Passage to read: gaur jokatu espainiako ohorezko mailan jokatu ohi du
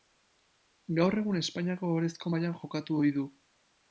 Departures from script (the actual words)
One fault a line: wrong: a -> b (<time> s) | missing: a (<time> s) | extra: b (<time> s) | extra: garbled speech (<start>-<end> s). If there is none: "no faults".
wrong: jokatu -> egun (1.2 s)